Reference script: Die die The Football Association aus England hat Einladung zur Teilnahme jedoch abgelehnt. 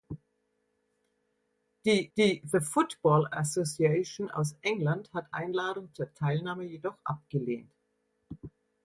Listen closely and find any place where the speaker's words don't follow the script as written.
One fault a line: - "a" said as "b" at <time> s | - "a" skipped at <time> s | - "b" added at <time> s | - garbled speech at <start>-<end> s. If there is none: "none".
none